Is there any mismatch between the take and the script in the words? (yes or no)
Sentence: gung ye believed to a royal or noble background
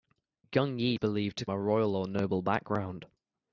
no